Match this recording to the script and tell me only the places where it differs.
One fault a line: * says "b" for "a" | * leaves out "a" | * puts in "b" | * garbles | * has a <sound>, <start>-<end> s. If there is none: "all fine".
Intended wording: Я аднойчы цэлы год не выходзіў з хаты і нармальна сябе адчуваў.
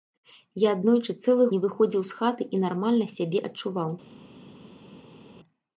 * leaves out "год"